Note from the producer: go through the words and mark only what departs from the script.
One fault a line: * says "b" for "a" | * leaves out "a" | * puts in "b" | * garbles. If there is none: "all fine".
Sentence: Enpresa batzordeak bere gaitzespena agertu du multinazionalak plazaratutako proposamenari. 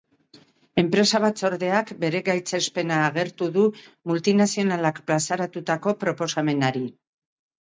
all fine